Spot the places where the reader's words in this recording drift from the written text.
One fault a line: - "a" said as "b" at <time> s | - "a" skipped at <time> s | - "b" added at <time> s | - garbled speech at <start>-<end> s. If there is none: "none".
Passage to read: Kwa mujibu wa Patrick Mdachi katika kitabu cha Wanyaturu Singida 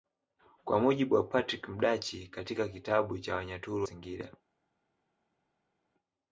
none